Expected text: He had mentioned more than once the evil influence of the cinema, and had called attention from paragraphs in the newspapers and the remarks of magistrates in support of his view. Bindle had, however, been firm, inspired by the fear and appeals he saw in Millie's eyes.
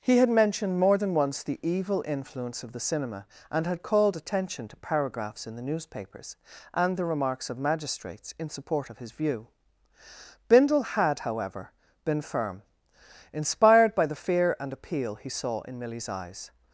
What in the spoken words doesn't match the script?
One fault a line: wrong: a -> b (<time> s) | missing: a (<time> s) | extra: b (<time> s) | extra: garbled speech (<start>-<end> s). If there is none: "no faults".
wrong: from -> to (4.7 s)
wrong: appeals -> appeal (14.7 s)